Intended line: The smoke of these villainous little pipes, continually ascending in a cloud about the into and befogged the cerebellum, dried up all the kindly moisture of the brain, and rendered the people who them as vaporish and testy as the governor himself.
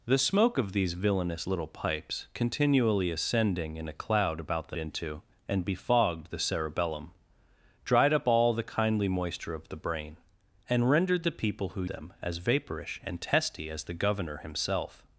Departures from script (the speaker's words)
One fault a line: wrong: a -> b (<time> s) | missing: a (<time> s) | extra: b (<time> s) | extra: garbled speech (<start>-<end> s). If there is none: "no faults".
no faults